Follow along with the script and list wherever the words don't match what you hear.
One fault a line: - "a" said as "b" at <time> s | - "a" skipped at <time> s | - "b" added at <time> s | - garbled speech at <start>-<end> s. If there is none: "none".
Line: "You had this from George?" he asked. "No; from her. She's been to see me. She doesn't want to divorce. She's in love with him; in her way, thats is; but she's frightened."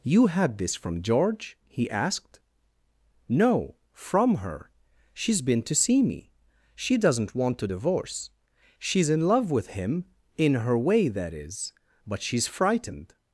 - "thats" said as "that" at 11.1 s